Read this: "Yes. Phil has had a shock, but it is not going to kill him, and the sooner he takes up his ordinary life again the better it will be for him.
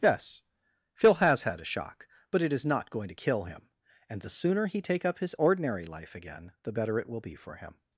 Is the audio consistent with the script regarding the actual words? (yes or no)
no